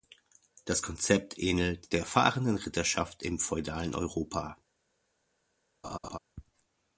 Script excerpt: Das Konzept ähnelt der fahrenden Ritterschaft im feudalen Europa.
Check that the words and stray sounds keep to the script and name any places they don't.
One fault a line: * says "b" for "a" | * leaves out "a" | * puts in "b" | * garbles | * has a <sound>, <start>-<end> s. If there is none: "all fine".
* has a laugh, 5.8-6.2 s